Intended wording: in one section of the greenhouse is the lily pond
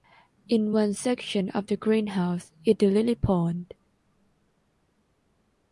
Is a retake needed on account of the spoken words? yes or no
no